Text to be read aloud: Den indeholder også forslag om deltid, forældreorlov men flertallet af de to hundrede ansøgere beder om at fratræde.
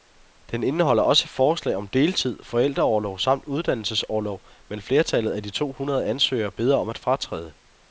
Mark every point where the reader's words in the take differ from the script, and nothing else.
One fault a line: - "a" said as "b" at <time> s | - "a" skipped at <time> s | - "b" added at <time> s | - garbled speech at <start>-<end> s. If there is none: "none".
- "samt uddannelsesorlov" added at 3.2 s